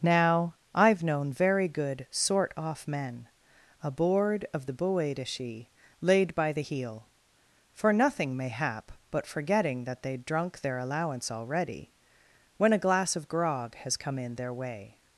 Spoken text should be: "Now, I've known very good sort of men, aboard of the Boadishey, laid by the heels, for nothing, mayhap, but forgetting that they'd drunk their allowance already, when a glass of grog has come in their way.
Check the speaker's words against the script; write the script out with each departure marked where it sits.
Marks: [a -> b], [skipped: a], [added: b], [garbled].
"Now, I've known very good sort [of -> off] men, aboard of the Boadishey, laid by the [heels, -> heel] for nothing, mayhap, but forgetting that they'd drunk their allowance already, when a glass of grog has come in their way.